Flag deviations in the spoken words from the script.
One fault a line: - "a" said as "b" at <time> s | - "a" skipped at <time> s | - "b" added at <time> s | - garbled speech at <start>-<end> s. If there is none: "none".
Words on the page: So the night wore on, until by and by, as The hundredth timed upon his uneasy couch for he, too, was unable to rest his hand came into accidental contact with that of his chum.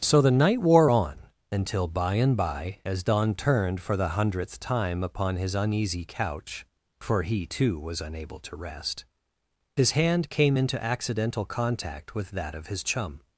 - "Don turned for" added at 3.0 s
- "timed" said as "time" at 4.6 s